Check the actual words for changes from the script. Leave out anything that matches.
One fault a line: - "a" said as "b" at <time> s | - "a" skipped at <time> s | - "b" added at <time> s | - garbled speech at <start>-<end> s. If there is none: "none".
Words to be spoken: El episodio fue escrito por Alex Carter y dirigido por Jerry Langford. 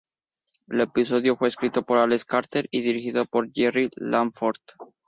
none